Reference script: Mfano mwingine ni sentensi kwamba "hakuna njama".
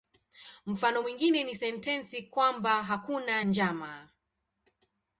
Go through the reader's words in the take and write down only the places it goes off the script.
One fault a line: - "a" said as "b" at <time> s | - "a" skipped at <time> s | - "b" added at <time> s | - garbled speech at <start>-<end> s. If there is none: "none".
none